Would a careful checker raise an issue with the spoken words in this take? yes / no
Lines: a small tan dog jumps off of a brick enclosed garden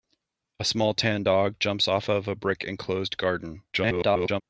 yes